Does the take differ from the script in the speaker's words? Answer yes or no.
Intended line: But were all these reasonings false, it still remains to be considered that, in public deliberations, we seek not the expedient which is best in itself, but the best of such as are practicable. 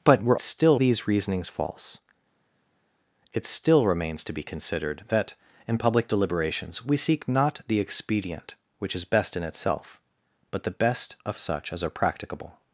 yes